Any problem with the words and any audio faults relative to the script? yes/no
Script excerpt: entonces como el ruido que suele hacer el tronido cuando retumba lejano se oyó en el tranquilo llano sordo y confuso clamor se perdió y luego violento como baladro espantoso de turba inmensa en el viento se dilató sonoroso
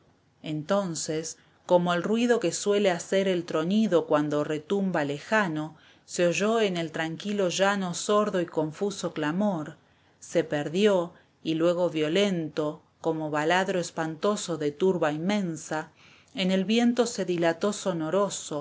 no